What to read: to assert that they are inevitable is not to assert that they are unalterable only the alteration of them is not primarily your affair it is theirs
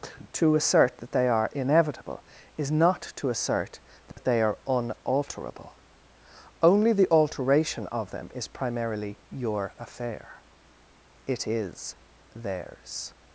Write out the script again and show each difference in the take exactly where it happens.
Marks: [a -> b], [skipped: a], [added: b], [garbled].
to assert that they are inevitable is not to assert that they are unalterable only the alteration of them is [skipped: not] primarily your affair it is theirs